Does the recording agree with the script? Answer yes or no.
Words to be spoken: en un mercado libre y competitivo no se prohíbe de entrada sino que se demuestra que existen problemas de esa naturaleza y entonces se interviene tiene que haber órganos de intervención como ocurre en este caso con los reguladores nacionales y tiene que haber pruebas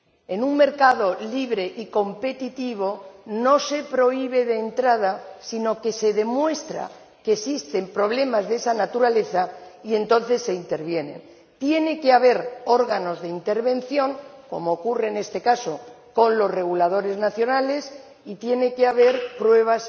yes